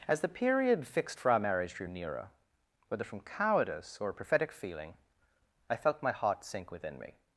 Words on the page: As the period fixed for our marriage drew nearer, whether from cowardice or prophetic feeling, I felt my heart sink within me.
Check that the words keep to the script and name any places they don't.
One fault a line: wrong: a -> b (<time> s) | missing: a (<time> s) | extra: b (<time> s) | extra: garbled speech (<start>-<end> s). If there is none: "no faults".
no faults